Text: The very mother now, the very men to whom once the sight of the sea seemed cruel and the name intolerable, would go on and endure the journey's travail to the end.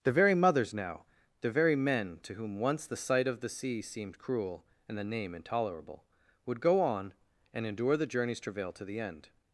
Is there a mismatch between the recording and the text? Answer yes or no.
yes